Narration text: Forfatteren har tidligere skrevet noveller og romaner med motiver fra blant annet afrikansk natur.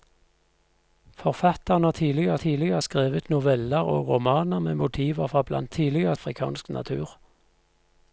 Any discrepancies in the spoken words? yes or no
yes